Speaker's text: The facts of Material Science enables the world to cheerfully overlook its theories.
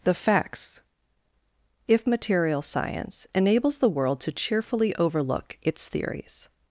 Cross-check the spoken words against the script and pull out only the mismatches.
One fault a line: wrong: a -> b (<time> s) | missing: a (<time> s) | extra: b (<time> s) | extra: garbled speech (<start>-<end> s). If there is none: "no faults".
wrong: of -> if (1.9 s)